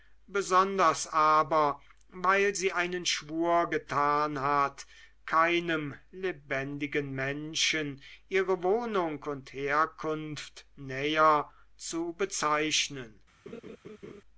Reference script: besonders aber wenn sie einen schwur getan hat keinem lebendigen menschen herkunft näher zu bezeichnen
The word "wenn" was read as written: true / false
false